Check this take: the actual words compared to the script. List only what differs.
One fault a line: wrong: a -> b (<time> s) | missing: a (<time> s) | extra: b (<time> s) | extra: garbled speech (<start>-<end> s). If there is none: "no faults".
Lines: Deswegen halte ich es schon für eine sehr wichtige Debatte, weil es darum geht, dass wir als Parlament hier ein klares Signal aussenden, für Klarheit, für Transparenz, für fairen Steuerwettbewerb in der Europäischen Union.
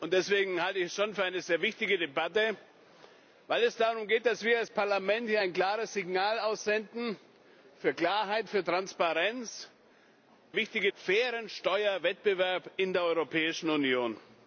wrong: für -> wichtige (10.5 s)